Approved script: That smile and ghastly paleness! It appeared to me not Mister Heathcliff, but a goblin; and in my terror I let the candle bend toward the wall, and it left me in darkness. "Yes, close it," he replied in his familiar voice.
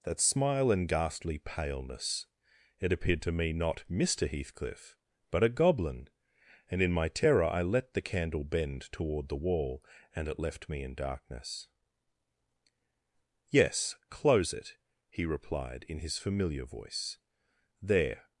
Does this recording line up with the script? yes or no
no